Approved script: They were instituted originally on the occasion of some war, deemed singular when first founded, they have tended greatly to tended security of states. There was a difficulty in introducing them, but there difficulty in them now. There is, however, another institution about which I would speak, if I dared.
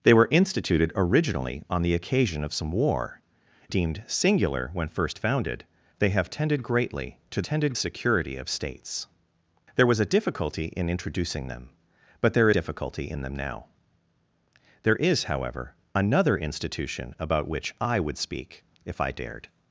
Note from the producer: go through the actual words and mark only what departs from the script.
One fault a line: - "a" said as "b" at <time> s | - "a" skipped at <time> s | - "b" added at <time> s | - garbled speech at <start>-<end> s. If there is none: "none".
none